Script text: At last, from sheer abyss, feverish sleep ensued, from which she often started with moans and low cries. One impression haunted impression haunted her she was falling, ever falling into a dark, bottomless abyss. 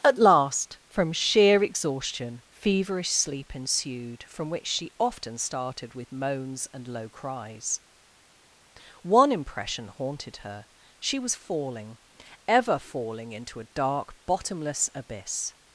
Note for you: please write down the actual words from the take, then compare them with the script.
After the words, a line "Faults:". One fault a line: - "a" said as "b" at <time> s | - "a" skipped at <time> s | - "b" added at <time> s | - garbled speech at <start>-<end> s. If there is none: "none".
At last, from sheer exhaustion, feverish sleep ensued, from which she often started with moans and low cries. One impression haunted her she was falling, ever falling into a dark, bottomless abyss.
Faults:
- "abyss" said as "exhaustion" at 1.6 s
- "impression haunted" skipped at 10.4 s